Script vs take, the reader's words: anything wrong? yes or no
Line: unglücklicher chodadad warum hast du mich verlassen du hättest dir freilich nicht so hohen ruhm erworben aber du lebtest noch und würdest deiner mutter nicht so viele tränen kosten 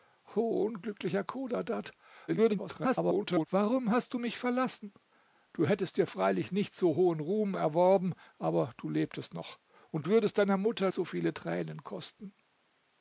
yes